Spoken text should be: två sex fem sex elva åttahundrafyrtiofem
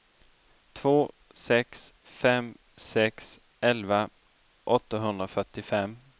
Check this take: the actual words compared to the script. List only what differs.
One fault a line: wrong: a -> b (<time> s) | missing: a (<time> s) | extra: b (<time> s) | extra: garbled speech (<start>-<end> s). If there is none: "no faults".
no faults